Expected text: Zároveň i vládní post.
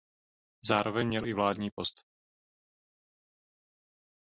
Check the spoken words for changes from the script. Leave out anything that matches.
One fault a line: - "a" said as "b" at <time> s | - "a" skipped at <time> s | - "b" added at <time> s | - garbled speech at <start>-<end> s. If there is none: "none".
- "měl" added at 1.0 s